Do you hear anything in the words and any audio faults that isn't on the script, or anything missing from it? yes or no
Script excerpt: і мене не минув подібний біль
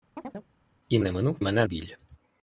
yes